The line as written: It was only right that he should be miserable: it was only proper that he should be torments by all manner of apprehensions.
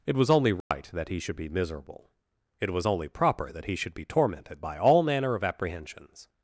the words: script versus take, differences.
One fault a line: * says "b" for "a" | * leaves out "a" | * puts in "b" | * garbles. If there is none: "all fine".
* says "tormented" for "torments"